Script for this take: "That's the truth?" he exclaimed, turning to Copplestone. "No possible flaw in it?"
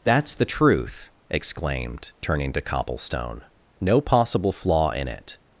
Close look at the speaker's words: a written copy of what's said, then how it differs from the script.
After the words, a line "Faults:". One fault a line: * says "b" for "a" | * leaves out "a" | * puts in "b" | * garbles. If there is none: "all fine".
"That's the truth?" exclaimed, turning to Copplestone. "No possible flaw in it?"
Faults:
* leaves out "he"